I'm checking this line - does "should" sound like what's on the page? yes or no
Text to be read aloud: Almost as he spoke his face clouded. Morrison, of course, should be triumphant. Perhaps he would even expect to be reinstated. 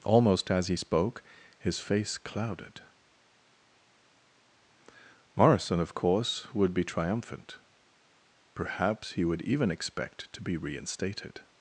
no